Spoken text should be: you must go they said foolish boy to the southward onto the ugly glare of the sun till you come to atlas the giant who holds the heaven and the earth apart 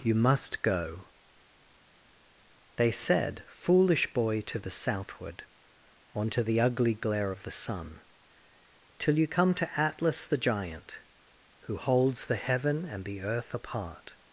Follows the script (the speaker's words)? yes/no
yes